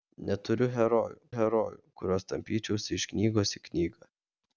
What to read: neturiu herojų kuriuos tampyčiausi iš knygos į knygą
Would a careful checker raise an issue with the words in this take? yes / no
yes